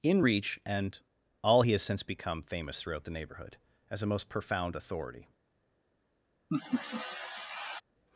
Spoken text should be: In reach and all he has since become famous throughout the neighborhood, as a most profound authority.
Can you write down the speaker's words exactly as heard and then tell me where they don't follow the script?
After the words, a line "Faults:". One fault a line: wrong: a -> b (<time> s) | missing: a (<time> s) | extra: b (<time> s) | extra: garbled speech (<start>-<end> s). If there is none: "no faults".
In reach and all he has since become famous throughout the neighborhood, as a most profound authority.
Faults:
no faults